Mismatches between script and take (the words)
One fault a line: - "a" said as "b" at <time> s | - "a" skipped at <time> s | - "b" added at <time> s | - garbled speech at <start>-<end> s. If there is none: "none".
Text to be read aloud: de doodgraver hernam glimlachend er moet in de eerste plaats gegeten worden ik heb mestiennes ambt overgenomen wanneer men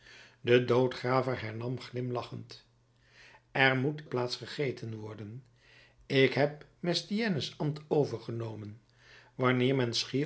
- "in de eerste" skipped at 4.0 s